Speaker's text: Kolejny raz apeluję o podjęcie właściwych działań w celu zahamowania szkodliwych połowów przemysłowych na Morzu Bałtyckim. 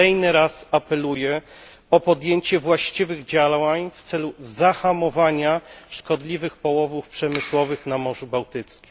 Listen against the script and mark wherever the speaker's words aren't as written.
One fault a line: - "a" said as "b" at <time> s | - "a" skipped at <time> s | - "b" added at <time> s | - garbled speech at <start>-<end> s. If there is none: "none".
none